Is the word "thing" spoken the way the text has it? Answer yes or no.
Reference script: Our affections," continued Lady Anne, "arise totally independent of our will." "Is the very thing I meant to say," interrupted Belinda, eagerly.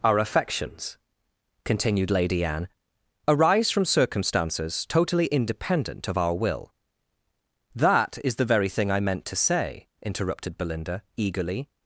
yes